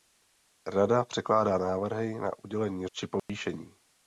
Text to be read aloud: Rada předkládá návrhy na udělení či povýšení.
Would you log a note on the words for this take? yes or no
no